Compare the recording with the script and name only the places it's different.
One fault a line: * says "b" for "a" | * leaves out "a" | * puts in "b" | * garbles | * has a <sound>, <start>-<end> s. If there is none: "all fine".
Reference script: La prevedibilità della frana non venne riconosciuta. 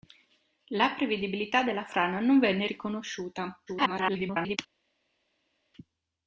* garbles